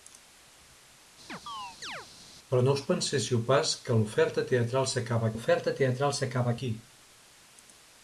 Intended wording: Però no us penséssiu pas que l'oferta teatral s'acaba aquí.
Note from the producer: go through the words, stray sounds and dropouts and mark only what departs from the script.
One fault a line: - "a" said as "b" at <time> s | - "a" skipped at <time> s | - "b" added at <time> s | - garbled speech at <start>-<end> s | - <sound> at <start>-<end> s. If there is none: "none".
- chirp at 1.3-2.1 s
- "l'oferta teatral s'acaba" added at 5.3 s